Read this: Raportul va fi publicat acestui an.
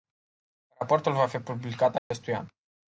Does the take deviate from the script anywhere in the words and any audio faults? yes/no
yes